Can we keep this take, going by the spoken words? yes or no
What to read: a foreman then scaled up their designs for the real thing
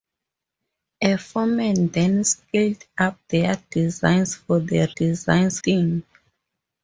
no